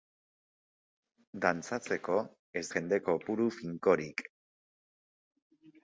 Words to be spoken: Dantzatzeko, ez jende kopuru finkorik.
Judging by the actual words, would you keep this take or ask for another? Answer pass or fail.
pass